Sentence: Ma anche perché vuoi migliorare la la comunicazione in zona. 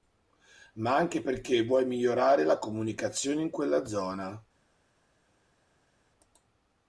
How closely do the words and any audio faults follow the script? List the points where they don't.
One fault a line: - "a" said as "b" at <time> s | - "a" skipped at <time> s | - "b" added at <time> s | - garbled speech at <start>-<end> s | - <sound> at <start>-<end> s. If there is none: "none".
- "la" skipped at 2.6 s
- "quella" added at 3.5 s